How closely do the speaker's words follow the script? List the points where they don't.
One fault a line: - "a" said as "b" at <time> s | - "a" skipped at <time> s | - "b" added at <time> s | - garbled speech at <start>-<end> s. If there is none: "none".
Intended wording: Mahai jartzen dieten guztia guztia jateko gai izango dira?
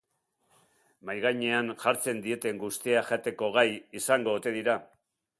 - "gainean" added at 1.2 s
- "guztia" skipped at 3.0 s
- "ote" added at 4.4 s